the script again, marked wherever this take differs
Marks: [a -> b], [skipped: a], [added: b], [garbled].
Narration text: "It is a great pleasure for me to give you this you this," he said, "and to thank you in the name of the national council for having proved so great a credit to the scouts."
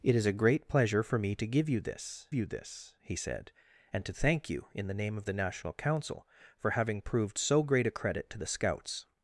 "It is a great pleasure for me to give you this you this," he said, "and to thank you in the name of the national council for having proved so great a credit to the scouts."